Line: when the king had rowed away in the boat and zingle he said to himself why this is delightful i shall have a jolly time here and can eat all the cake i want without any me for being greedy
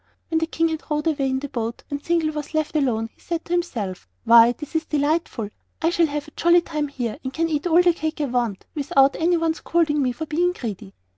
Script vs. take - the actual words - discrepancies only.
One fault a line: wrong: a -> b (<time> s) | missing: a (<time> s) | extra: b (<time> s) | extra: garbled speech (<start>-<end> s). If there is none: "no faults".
extra: was left alone (2.3 s)
extra: one scolding (9.4 s)